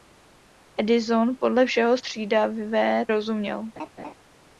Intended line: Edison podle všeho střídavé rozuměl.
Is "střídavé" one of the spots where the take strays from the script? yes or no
no